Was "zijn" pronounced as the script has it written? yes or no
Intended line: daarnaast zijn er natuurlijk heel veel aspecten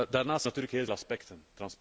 no